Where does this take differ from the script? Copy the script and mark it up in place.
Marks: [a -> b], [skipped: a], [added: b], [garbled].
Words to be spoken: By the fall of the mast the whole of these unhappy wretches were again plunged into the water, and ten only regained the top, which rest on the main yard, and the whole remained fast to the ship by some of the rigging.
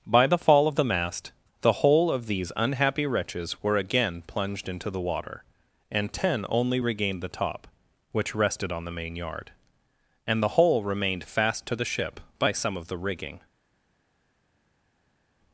By the fall of the mast the whole of these unhappy wretches were again plunged into the water, and ten only regained the top, which [rest -> rested] on the main yard, and the whole remained fast to the ship by some of the rigging.